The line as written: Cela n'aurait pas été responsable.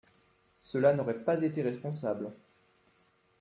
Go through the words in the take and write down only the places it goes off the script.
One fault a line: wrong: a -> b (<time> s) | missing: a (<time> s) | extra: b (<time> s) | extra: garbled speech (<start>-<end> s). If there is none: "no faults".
no faults